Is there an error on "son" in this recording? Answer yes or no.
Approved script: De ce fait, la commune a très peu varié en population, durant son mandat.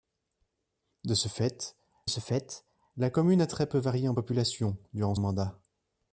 yes